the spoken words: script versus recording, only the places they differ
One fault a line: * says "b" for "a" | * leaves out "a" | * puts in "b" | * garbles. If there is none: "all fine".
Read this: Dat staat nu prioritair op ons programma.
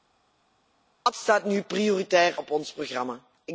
all fine